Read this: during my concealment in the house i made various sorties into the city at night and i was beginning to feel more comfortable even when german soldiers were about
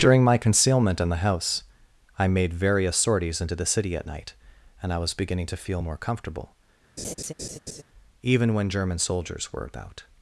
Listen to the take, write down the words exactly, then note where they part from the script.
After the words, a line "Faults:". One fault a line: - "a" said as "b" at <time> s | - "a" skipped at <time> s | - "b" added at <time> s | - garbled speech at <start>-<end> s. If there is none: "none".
during my concealment in the house i made various sorties into the city at night and i was beginning to feel more comfortable even when german soldiers were about
Faults:
none